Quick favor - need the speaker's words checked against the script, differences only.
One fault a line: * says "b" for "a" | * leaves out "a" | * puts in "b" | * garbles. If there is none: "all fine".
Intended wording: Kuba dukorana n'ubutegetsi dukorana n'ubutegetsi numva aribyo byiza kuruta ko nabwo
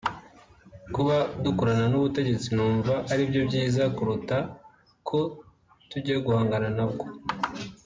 * leaves out "dukorana n'ubutegetsi"
* puts in "tujya guhangana"